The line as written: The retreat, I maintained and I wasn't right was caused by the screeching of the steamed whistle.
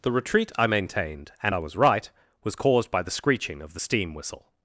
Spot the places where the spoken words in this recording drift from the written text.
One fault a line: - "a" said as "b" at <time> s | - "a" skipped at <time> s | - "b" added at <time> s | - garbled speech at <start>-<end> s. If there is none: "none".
- "wasn't" said as "was" at 1.6 s
- "steamed" said as "steam" at 3.8 s